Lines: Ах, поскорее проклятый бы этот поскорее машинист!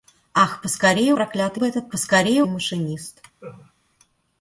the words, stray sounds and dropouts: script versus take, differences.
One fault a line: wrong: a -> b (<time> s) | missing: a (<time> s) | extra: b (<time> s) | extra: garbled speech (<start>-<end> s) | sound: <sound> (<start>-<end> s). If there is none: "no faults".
sound: laugh (3.4-3.7 s)